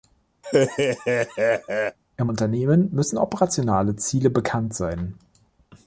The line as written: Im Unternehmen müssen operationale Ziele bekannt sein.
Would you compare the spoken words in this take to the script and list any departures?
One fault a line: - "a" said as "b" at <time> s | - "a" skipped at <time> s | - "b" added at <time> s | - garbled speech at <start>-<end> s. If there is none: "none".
none